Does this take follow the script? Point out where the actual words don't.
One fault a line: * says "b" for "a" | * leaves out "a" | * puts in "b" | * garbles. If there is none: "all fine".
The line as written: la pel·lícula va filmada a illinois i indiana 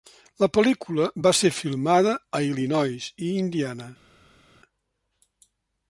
* puts in "ser"